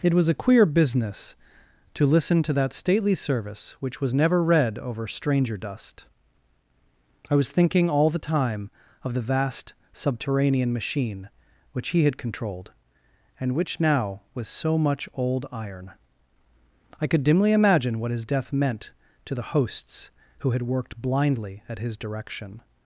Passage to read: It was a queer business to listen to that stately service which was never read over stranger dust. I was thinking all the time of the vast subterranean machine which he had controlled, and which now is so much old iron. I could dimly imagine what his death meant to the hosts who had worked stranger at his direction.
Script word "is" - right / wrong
wrong